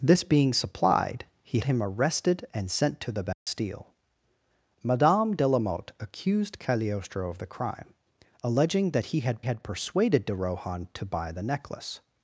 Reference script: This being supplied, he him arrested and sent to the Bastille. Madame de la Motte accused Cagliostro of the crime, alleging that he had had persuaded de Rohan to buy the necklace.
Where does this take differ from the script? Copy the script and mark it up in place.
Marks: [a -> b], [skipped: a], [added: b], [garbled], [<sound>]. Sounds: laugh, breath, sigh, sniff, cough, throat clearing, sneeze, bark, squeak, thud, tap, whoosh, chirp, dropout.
This being supplied, he him arrested and sent to the Bastille. [dropout] Madame de la Motte accused Cagliostro of the crime, alleging that he had had persuaded de Rohan to buy the necklace.